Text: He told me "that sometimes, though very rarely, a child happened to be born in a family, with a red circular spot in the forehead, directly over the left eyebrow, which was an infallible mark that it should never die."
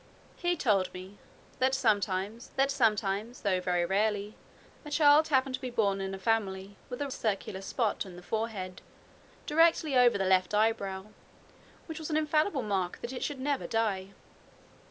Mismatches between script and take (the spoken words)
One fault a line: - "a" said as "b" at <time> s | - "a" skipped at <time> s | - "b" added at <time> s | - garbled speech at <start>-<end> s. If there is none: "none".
- "that sometimes" added at 2.6 s
- "red" skipped at 7.1 s